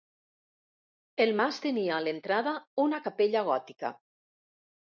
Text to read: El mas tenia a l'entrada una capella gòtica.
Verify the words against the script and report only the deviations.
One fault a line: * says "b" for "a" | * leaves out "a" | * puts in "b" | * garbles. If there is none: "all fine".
all fine